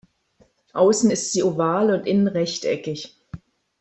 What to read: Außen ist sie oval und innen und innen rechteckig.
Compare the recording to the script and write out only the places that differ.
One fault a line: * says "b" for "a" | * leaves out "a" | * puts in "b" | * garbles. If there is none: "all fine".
* leaves out "und innen"